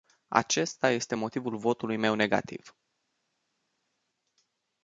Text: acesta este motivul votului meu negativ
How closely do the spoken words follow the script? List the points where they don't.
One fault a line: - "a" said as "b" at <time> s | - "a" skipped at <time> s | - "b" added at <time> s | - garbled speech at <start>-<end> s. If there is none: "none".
none